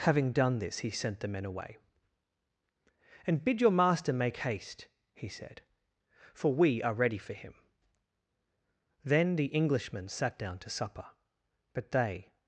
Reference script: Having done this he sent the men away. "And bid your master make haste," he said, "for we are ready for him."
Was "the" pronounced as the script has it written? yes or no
yes